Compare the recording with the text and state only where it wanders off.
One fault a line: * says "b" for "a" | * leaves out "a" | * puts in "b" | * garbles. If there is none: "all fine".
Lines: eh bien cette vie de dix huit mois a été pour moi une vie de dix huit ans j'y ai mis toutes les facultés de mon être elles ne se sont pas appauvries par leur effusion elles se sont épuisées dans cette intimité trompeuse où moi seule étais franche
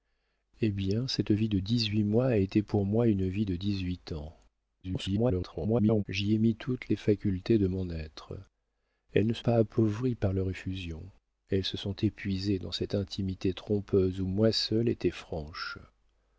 * garbles
* leaves out "sont"